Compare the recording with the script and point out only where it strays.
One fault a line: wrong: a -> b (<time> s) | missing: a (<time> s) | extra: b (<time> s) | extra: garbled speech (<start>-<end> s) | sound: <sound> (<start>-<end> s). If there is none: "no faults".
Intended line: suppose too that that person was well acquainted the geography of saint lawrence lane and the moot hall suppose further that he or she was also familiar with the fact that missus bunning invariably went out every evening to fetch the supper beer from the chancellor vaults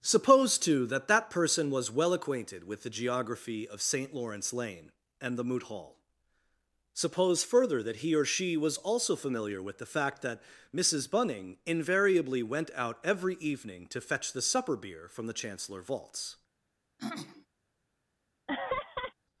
extra: with (2.6 s)
sound: throat clearing (17.0-17.5 s)
sound: laugh (18.5-19.1 s)